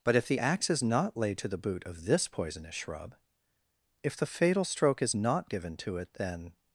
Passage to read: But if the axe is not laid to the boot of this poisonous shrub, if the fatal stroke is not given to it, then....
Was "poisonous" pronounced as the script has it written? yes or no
yes